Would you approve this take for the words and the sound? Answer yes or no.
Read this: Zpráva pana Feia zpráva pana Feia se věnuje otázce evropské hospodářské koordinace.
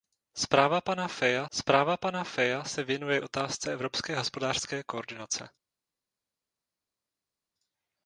yes